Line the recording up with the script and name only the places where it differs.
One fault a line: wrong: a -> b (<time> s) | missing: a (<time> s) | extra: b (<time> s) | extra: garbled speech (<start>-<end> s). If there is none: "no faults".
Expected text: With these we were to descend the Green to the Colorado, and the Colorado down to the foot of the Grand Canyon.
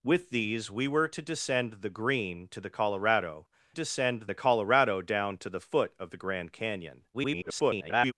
wrong: and -> descend (3.7 s)
extra: garbled speech (7.1-8.1 s)